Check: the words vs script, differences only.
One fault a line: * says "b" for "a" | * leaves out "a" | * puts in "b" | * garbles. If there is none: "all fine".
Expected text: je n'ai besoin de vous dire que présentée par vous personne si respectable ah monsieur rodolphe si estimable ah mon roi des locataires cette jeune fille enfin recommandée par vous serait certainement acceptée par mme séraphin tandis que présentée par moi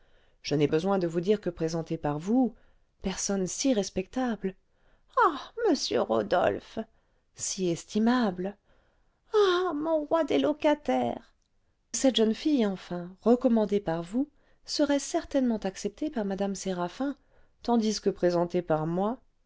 all fine